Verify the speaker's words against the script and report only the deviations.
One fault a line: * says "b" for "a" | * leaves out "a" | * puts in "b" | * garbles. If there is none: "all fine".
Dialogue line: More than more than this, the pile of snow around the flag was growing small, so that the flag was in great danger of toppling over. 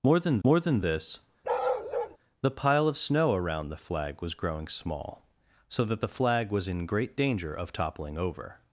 all fine